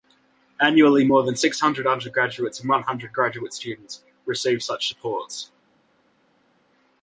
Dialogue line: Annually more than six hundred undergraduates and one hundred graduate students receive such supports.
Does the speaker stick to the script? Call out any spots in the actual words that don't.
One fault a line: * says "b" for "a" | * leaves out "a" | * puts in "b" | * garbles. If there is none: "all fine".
all fine